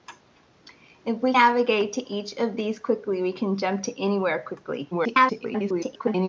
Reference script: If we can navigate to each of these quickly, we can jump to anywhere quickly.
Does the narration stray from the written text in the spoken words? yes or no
yes